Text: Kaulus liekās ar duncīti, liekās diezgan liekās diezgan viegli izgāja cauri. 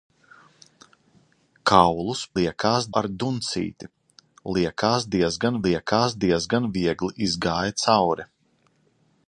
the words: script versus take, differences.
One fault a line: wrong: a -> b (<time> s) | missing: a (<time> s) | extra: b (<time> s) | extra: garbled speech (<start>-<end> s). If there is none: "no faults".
no faults